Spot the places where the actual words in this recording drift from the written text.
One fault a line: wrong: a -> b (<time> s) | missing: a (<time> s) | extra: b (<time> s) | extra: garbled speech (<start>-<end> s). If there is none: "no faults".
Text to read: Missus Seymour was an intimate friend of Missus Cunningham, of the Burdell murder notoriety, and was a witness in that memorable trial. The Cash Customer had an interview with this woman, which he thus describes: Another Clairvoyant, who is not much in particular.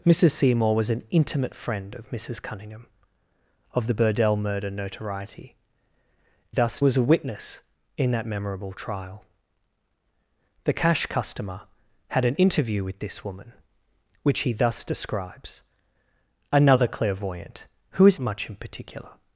wrong: and -> thus (6.5 s)
missing: not (18.2 s)